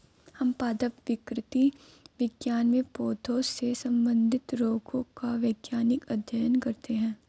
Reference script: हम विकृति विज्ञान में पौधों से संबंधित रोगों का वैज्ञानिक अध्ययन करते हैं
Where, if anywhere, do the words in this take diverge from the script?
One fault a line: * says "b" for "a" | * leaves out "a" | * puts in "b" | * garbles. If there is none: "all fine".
* puts in "पादप"